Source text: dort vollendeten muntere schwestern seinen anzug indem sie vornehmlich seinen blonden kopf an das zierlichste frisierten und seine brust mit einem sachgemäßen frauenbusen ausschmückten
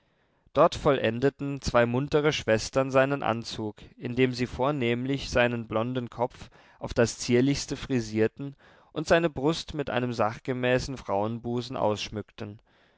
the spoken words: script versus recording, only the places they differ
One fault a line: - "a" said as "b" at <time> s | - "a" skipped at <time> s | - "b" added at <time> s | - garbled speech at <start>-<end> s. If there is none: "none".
- "zwei" added at 1.6 s
- "an" said as "auf" at 6.8 s